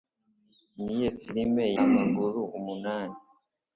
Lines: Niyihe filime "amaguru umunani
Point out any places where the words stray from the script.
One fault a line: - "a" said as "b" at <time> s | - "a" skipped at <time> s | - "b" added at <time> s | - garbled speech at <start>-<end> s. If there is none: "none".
none